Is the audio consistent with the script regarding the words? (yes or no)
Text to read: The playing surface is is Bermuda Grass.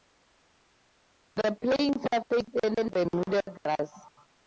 yes